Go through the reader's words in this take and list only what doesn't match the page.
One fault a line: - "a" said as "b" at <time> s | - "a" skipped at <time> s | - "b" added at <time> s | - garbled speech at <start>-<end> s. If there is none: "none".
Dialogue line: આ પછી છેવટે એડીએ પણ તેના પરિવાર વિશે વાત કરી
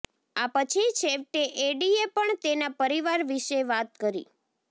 none